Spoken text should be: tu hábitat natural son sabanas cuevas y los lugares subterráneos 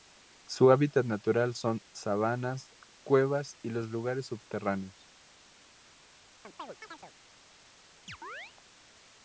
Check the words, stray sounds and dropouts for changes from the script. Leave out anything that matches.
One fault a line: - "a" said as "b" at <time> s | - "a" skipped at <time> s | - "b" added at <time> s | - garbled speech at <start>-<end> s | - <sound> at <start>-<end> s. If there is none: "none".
- "tu" said as "su" at 0.5 s
- chirp at 6.4-7.1 s
- chirp at 8.1-8.5 s